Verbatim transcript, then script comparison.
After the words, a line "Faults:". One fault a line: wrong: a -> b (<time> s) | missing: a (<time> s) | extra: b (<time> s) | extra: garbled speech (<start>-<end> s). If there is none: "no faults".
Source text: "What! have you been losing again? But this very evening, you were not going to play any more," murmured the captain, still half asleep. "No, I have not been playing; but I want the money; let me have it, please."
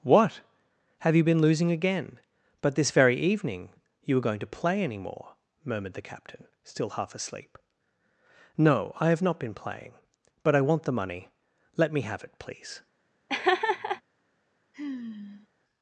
"What! have you been losing again? But this very evening, you were going to play any more," murmured the captain, still half asleep. "No, I have not been playing; but I want the money; let me have it, please."
Faults:
missing: not (4.2 s)